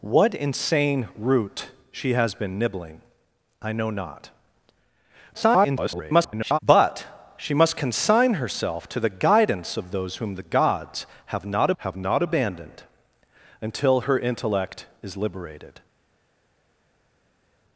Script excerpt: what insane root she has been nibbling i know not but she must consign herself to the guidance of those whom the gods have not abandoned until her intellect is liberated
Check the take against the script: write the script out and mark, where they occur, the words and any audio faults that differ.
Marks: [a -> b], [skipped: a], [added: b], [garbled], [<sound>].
what insane root she has been nibbling i know not [garbled] but she must consign herself to the guidance of those whom the gods have not [added: have not] abandoned until her intellect is liberated